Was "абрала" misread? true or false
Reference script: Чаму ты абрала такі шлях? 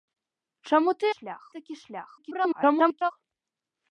true